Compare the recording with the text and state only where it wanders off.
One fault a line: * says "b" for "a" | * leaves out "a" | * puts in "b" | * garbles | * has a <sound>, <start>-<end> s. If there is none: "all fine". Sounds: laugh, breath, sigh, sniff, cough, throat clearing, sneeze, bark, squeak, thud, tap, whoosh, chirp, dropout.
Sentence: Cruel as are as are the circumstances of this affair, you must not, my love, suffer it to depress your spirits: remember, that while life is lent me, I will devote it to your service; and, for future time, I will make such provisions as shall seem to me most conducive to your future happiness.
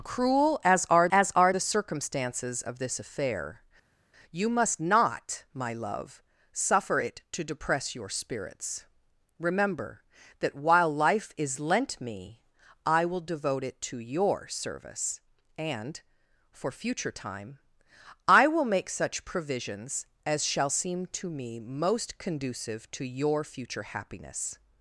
all fine